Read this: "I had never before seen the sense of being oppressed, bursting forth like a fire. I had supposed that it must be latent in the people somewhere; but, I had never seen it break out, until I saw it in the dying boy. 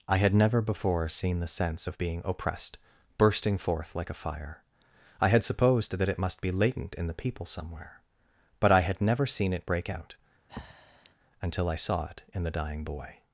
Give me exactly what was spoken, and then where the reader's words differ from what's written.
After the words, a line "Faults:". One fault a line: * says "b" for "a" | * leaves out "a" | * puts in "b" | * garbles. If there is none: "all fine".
"I had never before seen the sense of being oppressed, bursting forth like a fire. I had supposed that it must be latent in the people somewhere; but, I had never seen it break out, until I saw it in the dying boy.
Faults:
all fine